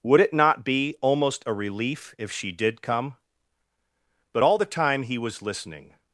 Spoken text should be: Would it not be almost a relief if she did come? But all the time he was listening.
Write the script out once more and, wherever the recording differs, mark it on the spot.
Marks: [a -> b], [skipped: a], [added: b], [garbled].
Would it not be almost a relief if she did come? But all the time he was listening.